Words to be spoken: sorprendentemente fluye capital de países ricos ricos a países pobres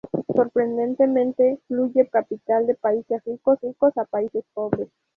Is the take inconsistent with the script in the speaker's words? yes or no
no